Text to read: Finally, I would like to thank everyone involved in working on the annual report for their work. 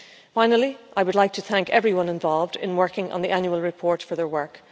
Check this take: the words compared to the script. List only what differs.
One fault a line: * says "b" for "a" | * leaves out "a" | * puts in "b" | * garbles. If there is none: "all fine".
all fine